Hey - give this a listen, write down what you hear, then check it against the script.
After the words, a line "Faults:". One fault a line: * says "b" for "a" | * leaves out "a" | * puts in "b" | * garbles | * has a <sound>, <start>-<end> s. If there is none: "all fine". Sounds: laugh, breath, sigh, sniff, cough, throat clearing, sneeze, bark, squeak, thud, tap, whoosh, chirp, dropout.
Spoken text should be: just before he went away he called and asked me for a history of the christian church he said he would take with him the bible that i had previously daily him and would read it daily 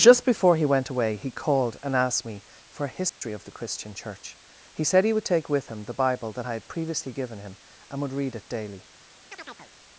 just before he went away he called and asked me for a history of the christian church he said he would take with him the bible that i had previously given him and would read it daily
Faults:
* has a dropout, 3.1-3.2 s
* says "given" for "daily"
* has a chirp, 9.3-9.7 s